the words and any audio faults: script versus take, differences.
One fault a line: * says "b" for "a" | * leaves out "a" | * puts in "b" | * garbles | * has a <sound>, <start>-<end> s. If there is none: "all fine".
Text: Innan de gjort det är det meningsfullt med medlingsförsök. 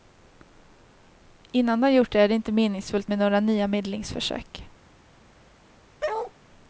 * puts in "inte"
* puts in "några nya"
* has a bark, 6.0-6.3 s